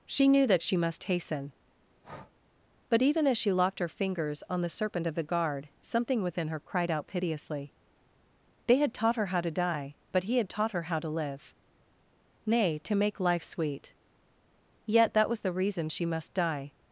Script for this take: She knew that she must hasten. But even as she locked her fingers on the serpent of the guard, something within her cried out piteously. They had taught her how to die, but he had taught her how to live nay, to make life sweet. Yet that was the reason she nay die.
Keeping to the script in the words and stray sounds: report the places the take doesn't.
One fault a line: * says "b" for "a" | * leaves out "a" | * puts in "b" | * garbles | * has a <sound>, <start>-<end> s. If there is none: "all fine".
* has a breath, 2.0-2.3 s
* says "must" for "nay"